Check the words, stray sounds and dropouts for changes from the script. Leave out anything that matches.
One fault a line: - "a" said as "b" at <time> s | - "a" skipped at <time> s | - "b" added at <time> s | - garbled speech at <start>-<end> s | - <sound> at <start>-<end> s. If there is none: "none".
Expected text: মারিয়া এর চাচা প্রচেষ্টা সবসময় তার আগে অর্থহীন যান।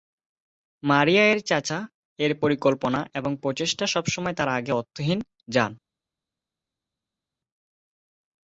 - "এর পরিকল্পনা এবং" added at 2.2 s